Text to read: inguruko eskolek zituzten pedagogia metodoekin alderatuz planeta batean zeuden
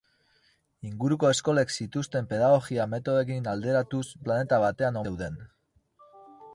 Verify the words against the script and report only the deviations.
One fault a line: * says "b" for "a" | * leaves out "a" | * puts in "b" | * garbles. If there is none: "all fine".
all fine